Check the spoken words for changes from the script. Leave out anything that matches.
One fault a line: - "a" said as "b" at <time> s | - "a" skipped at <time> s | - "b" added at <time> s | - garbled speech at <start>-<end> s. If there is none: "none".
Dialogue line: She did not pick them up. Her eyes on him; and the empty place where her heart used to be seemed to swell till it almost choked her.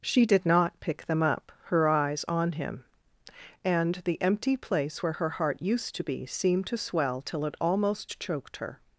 none